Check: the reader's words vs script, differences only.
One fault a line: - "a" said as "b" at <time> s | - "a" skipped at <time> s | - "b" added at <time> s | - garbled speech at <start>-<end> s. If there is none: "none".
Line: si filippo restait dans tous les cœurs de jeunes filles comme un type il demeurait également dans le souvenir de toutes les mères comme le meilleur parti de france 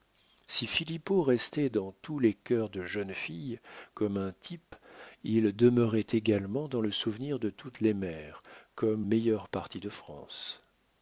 - "le" skipped at 9.1 s